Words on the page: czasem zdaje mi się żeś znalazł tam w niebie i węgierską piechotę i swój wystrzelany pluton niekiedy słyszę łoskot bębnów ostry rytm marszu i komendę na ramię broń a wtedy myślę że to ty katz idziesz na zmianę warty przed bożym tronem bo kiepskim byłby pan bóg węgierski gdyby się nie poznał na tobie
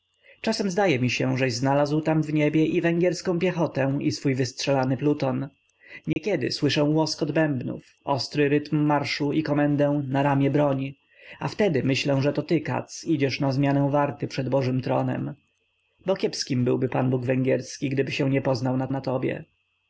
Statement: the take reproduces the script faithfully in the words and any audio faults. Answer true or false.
false